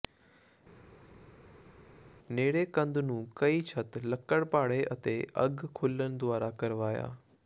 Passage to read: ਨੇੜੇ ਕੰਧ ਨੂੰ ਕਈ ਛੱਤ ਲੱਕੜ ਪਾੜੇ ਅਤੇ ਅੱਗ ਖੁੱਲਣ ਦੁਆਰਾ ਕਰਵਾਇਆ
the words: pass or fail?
pass